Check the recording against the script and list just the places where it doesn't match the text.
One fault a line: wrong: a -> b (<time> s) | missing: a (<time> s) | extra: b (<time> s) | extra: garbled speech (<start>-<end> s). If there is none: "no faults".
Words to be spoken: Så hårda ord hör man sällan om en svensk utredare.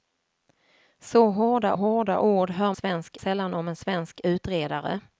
extra: hårda (1.7 s)
wrong: man -> svensk (2.7 s)